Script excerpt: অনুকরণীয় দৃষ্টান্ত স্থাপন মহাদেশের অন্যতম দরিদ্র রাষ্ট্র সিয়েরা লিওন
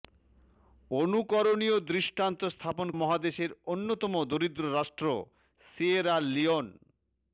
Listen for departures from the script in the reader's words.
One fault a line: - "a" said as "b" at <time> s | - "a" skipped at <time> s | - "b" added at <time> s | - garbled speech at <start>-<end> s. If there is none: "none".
none